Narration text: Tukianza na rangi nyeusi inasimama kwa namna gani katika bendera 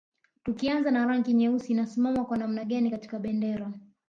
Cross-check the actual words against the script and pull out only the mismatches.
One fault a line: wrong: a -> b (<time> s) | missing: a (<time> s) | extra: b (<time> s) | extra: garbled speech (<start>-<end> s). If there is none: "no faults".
no faults